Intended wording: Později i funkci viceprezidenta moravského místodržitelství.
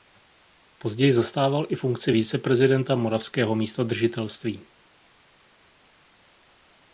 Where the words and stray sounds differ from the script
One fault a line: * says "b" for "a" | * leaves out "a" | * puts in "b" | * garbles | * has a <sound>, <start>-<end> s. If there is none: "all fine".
* puts in "zastával"